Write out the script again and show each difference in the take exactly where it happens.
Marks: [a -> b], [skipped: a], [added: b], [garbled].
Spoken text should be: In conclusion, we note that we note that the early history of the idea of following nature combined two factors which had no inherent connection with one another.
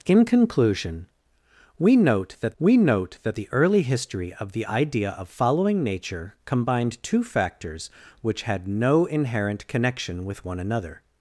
In conclusion, we note that we note that the early history of the idea of following nature combined two factors which had no inherent connection with one another.